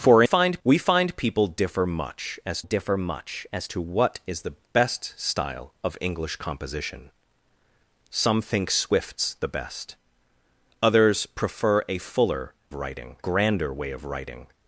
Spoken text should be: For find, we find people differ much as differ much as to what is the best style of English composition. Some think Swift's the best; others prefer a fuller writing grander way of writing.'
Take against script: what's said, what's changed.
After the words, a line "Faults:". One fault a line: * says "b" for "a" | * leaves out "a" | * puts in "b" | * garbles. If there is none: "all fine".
For find, we find people differ much as differ much as to what is the best style of English composition. Some think Swift's the best; others prefer a fuller writing grander way of writing.'
Faults:
all fine